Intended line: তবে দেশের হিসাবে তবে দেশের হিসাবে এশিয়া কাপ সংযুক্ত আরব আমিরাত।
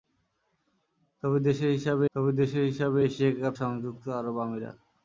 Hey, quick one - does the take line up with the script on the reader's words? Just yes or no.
yes